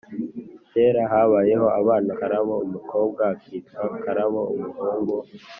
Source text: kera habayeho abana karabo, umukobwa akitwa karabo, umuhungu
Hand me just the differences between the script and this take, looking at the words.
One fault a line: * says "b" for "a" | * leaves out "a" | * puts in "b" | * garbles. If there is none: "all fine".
all fine